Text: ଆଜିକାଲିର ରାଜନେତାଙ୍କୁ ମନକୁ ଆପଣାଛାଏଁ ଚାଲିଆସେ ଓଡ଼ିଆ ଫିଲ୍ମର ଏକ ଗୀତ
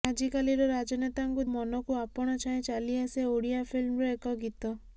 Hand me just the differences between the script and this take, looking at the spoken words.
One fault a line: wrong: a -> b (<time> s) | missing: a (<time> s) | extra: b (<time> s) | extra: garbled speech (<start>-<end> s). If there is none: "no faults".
no faults